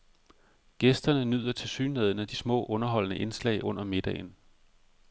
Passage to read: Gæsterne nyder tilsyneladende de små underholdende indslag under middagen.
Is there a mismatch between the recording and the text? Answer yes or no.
no